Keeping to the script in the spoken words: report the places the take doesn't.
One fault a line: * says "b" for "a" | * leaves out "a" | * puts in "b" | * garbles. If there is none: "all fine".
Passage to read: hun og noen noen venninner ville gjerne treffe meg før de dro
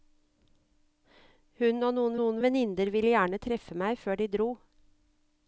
all fine